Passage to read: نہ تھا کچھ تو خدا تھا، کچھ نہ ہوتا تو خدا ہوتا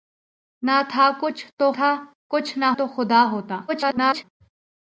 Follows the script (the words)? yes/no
no